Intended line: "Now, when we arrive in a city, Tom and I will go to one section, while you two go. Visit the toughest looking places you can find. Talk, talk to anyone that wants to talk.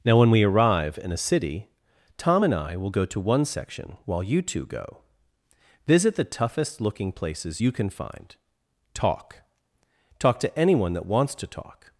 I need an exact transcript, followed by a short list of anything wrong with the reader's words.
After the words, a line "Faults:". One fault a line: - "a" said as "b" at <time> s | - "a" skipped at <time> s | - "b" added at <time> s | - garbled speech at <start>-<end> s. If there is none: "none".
"Now, when we arrive in a city, Tom and I will go to one section, while you two go. Visit the toughest looking places you can find. Talk, talk to anyone that wants to talk.
Faults:
none